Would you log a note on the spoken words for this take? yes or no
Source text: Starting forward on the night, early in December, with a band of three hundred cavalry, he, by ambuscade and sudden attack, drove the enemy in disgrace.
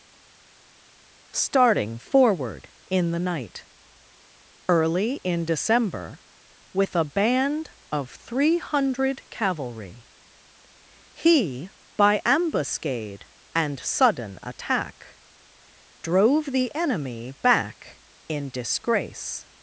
yes